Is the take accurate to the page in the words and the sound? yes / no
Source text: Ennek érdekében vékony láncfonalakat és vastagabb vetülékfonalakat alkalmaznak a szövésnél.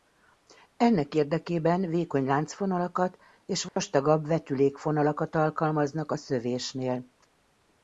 no